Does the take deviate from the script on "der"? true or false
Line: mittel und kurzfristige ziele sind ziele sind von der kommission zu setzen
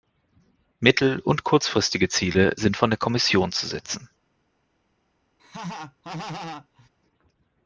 false